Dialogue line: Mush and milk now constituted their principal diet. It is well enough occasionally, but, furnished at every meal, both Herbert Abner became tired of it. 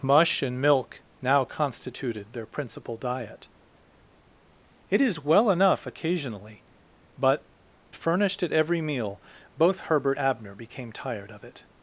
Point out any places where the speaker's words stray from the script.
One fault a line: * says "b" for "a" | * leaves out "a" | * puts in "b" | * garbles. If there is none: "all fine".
all fine